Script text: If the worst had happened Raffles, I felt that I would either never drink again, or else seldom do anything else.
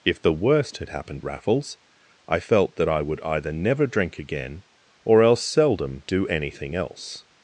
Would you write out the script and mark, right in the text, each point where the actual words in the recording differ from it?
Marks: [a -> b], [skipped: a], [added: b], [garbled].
If the worst had happened Raffles, I felt that I would either never drink again, or else seldom do anything else.